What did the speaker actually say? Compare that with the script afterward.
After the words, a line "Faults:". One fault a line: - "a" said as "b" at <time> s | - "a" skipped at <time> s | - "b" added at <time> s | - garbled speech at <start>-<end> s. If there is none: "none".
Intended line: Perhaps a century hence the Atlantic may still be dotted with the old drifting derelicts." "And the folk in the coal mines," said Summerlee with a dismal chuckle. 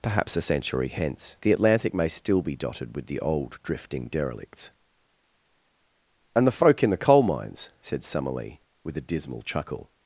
Perhaps a century hence the Atlantic may still be dotted with the old drifting derelicts." "And the folk in the coal mines," said Summerlee with a dismal chuckle.
Faults:
none